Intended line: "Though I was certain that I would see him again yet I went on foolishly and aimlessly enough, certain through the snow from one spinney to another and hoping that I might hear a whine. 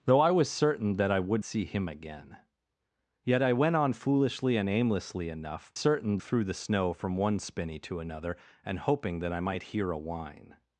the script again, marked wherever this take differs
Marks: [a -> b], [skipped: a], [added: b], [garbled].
"Though I was certain that I would see him again yet I went on foolishly and aimlessly enough, certain through the snow from one spinney to another and hoping that I might hear a whine.